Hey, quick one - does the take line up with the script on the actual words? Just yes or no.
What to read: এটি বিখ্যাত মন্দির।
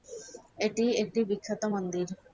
no